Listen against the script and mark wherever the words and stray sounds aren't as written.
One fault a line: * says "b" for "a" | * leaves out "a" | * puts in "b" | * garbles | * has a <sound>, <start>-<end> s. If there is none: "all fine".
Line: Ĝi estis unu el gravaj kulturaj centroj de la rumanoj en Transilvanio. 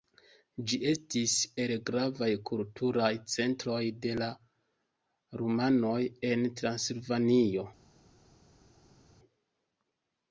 * leaves out "unu"